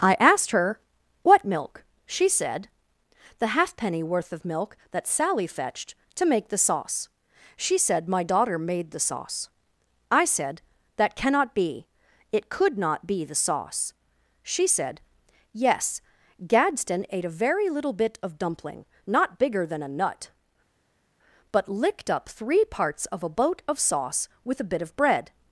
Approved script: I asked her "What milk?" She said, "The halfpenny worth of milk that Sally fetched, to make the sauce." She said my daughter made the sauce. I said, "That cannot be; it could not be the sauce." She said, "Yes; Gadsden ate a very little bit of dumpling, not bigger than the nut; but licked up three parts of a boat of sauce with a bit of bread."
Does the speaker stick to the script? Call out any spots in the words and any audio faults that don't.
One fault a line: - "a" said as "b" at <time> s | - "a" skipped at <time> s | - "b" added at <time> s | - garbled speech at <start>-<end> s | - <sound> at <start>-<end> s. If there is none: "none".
- "the" said as "a" at 19.8 s